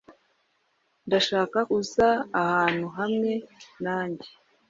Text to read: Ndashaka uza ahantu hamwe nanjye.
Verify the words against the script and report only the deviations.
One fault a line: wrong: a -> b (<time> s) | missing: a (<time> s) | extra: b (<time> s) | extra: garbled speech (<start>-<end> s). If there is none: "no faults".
no faults